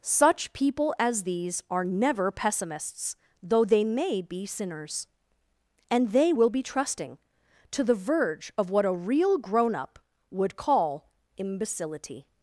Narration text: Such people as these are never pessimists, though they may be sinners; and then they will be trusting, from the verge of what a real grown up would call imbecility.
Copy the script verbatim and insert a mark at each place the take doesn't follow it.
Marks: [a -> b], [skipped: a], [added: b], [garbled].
Such people as these are never pessimists, though they may be sinners; and [skipped: then] they will be trusting, [from -> to] the verge of what a real grown up would call imbecility.